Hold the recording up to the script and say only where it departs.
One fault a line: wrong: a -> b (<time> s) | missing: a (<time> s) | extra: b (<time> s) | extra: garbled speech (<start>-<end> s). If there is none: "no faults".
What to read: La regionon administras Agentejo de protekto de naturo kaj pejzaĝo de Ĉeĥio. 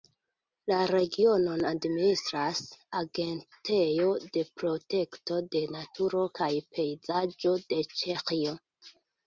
no faults